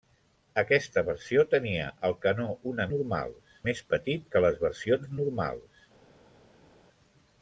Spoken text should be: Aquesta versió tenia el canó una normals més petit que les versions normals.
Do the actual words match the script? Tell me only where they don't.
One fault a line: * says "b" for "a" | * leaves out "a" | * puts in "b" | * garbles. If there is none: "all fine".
all fine